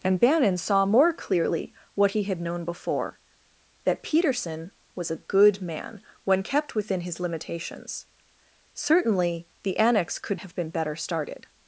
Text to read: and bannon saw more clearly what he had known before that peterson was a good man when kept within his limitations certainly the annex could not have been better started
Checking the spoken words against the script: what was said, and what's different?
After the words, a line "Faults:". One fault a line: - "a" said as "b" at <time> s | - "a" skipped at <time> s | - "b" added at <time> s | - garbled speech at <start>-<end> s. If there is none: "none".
and bannon saw more clearly what he had known before that peterson was a good man when kept within his limitations certainly the annex could have been better started
Faults:
- "not" skipped at 10.4 s